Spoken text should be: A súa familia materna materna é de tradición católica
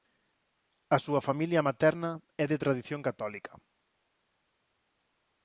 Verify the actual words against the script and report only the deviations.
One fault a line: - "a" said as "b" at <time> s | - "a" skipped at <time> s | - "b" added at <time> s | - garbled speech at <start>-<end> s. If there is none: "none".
- "materna" skipped at 2.1 s